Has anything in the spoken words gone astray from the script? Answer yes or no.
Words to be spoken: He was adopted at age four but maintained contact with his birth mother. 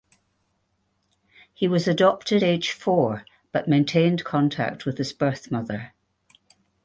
yes